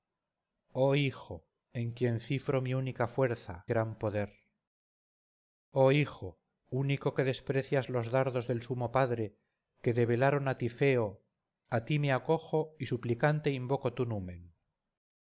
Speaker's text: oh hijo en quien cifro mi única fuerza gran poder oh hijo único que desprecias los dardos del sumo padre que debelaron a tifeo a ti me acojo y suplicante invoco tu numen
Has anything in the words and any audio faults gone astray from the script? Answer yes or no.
no